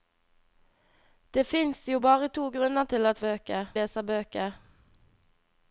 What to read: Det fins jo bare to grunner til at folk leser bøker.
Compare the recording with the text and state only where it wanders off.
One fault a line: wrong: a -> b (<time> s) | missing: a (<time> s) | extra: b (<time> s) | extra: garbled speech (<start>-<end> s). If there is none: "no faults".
wrong: folk -> bøker (3.3 s)